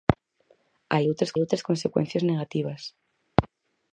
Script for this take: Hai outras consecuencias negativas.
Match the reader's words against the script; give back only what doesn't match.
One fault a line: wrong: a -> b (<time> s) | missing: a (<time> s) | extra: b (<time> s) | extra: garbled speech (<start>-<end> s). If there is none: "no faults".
extra: outras (1.4 s)